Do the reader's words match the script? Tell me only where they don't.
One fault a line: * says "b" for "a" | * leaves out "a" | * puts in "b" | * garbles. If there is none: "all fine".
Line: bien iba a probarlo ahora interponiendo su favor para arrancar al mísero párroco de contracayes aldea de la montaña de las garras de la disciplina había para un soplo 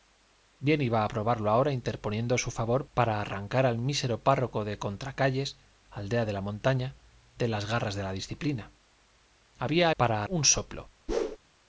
all fine